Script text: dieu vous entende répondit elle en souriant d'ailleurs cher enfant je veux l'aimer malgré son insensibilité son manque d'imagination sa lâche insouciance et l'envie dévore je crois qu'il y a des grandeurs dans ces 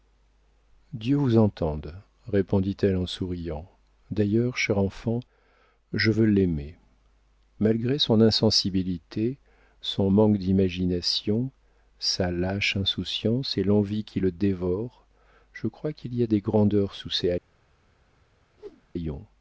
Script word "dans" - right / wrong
wrong